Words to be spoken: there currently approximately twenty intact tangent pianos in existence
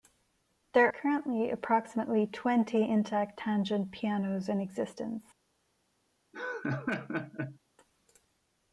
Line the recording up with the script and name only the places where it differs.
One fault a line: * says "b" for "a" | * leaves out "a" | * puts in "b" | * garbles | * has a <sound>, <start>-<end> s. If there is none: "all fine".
* has a laugh, 6.3-7.6 s